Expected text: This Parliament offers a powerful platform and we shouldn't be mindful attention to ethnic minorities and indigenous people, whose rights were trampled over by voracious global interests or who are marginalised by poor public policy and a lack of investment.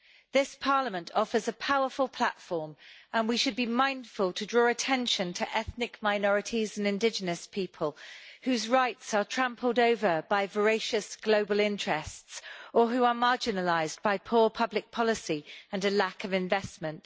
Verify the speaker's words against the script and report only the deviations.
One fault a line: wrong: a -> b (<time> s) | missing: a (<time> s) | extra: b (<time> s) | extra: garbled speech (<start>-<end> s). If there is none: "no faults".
wrong: shouldn't -> should (3.4 s)
extra: to draw (4.3 s)
wrong: were -> are (9.1 s)